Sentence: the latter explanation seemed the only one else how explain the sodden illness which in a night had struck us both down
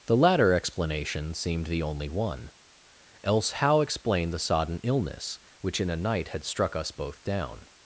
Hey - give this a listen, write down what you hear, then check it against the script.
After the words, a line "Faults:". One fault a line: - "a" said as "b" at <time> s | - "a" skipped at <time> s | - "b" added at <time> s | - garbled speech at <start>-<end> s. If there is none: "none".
the latter explanation seemed the only one else how explain the sodden illness which in a night had struck us both down
Faults:
none